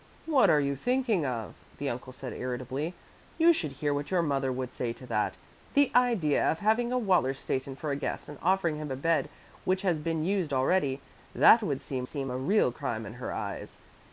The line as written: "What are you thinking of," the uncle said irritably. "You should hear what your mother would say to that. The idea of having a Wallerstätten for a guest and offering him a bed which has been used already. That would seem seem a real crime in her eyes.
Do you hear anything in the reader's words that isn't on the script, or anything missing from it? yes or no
no